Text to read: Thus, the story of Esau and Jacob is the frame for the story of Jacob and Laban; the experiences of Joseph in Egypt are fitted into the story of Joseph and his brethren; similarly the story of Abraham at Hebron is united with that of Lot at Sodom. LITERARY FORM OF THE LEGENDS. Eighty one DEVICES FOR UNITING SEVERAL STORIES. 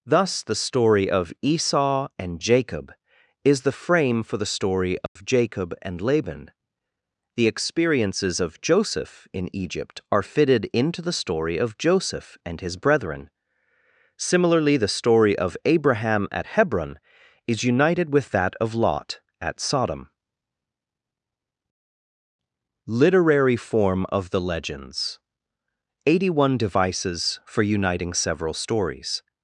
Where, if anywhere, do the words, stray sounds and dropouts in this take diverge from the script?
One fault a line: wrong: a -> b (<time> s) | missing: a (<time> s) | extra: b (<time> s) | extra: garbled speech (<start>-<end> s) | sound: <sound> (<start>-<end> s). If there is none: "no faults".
sound: dropout (5.1-5.2 s)